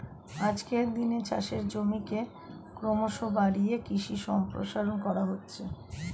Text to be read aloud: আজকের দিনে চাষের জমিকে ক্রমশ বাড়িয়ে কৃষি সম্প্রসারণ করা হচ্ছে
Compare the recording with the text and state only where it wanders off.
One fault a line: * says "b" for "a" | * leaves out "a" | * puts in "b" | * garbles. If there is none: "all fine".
all fine